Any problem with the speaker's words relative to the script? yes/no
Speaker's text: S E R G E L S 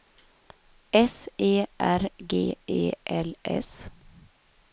no